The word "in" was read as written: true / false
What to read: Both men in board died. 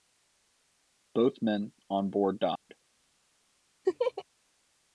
false